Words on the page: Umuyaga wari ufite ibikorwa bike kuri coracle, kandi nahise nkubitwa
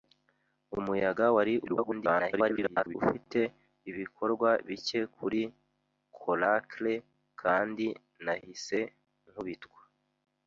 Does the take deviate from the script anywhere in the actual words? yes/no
yes